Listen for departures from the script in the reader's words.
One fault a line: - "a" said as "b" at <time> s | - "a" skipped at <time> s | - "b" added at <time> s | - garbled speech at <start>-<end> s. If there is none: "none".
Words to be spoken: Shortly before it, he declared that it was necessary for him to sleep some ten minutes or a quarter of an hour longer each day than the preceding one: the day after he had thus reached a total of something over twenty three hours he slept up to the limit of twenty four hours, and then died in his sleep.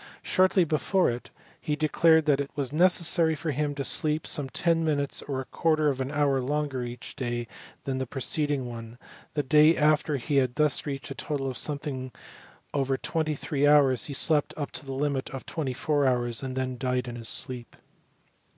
none